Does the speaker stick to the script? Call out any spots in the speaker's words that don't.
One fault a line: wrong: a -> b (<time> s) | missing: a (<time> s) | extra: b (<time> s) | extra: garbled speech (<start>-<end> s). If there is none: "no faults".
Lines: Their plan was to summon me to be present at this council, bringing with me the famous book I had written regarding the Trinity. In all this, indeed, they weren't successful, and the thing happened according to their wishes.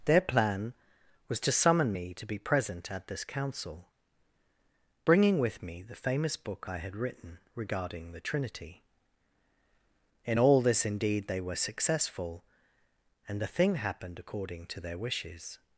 wrong: weren't -> were (11.4 s)